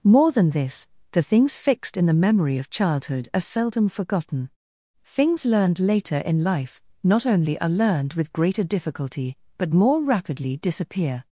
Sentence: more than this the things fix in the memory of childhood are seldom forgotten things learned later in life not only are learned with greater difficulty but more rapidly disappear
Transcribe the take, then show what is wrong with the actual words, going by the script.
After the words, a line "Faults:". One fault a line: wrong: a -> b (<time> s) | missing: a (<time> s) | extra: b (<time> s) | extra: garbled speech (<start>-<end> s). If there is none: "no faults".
more than this the things fixed in the memory of childhood are seldom forgotten things learned later in life not only are learned with greater difficulty but more rapidly disappear
Faults:
wrong: fix -> fixed (1.6 s)